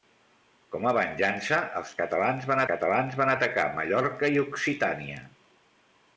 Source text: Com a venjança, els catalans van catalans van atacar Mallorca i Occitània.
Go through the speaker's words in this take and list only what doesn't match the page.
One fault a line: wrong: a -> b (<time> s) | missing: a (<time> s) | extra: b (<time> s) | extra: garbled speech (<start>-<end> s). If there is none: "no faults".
no faults